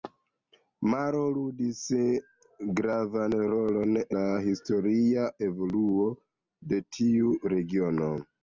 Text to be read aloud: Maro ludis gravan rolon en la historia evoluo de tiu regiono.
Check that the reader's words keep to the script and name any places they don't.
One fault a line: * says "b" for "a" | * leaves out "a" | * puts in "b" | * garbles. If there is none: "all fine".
* leaves out "en"